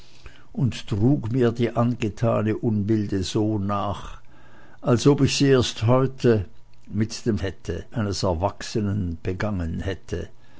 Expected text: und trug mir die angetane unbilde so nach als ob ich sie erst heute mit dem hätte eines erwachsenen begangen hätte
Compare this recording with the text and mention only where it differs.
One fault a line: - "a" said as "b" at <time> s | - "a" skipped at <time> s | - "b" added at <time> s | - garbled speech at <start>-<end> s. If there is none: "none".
none